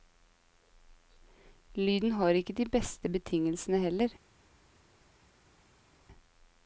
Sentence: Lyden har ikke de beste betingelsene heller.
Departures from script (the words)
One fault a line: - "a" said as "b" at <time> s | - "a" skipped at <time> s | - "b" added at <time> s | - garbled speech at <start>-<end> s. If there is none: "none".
none